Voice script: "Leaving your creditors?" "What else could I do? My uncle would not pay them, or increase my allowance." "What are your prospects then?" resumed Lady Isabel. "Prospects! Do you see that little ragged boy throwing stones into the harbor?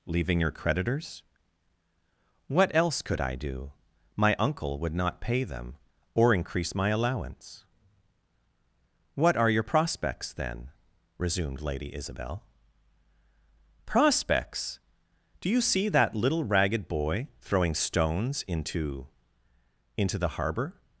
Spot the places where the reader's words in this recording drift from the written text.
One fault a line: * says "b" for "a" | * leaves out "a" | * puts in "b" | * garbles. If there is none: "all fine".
* puts in "into"